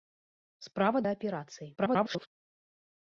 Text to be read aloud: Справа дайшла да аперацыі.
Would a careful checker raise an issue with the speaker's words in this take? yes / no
yes